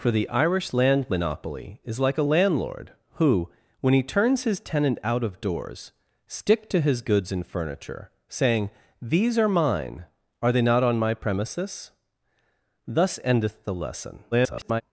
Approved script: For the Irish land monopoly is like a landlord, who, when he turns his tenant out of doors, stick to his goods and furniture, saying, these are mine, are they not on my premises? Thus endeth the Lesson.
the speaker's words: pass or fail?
fail